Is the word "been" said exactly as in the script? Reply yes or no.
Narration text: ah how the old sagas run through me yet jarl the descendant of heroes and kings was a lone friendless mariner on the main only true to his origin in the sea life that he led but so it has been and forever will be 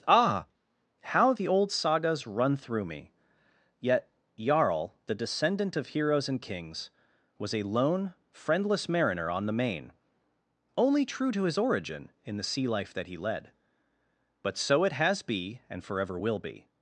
no